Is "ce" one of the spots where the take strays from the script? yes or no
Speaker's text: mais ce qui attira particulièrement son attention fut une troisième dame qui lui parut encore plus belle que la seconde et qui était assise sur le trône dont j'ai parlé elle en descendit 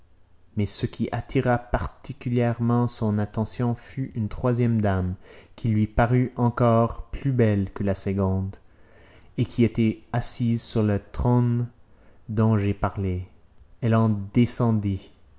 no